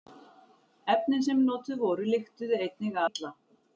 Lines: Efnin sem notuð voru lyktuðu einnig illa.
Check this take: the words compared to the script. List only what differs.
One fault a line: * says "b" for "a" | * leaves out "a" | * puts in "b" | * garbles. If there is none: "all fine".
all fine